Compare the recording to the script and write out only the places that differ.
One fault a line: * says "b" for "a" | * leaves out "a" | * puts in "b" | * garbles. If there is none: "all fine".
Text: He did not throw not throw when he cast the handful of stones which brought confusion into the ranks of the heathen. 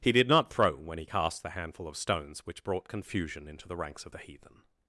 * leaves out "not throw"